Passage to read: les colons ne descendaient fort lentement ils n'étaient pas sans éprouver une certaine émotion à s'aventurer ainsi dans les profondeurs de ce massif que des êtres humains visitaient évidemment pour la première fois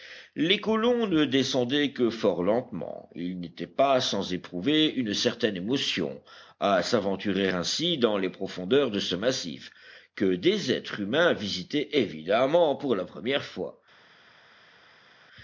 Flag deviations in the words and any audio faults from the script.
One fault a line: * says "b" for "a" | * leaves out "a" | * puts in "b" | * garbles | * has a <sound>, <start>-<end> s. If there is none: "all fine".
* puts in "que"